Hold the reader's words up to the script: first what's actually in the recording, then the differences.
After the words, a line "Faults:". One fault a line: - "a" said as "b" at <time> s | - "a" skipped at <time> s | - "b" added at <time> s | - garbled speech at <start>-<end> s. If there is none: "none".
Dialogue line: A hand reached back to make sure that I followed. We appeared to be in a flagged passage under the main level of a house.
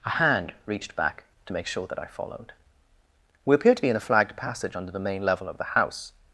A hand reached back to make sure that I followed. We appeared to be in a flagged passage under the main level of the house.
Faults:
- "a" said as "the" at 5.6 s